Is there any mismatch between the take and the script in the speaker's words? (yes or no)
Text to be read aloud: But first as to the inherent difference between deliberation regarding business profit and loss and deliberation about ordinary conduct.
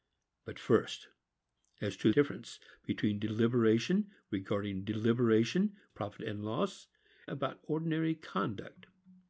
yes